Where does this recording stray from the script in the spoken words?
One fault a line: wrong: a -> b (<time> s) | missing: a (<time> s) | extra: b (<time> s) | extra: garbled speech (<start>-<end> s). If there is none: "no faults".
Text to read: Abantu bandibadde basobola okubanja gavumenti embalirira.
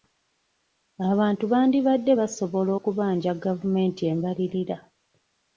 no faults